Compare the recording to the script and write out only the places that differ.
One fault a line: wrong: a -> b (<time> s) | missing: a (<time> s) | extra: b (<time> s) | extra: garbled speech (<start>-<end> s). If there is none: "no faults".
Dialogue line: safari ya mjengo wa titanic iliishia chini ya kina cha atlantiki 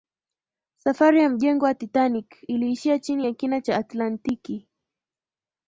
no faults